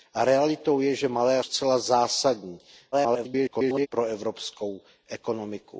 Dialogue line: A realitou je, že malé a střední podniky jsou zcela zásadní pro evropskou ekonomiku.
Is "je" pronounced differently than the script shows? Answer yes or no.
no